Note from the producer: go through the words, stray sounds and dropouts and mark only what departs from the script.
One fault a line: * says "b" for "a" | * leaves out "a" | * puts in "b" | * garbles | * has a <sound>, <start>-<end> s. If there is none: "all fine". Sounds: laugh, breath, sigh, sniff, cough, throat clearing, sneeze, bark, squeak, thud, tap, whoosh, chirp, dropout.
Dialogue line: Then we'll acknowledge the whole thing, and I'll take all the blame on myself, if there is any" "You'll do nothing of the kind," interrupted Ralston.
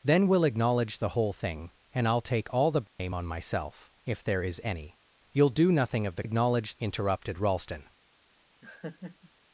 * has a dropout, 2.9-3.0 s
* says "acknowledge" for "kind"
* has a laugh, 8.6-9.3 s